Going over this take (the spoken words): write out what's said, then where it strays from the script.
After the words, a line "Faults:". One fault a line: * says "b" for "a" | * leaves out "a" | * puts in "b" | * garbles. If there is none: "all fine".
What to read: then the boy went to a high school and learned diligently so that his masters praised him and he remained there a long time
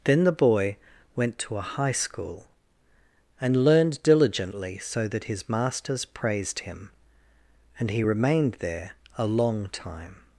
then the boy went to a high school and learned diligently so that his masters praised him and he remained there a long time
Faults:
all fine